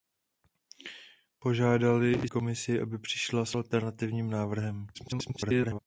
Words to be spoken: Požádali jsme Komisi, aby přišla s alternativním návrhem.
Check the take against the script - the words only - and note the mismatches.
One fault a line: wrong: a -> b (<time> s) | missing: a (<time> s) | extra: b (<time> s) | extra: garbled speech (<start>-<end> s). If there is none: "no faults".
missing: jsme (2.3 s)
extra: garbled speech (4.9-5.8 s)